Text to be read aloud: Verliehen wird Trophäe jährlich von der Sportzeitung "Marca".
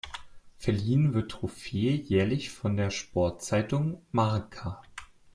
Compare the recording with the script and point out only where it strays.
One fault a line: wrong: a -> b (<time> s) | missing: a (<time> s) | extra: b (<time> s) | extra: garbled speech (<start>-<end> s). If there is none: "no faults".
no faults